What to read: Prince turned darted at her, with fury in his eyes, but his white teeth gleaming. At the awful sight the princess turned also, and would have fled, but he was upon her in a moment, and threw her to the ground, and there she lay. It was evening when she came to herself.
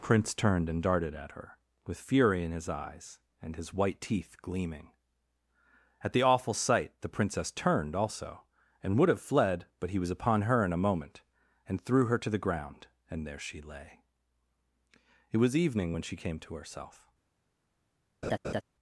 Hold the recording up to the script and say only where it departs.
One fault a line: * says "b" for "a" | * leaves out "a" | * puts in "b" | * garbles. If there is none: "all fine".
* puts in "and"
* says "and" for "but"